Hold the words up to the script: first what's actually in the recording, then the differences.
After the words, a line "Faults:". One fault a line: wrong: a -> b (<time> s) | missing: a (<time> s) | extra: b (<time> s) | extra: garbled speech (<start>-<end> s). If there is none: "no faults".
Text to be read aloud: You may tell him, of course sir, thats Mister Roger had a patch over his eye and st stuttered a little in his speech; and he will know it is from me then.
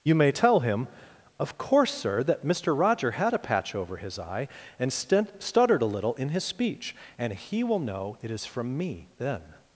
You may tell him, of course sir, that Mister Roger had a patch over his eye and st stuttered a little in his speech; and he will know it is from me then.
Faults:
wrong: thats -> that (2.2 s)